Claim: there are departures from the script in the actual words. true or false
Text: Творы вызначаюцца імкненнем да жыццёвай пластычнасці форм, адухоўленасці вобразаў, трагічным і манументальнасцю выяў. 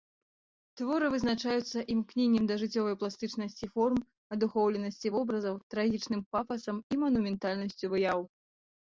true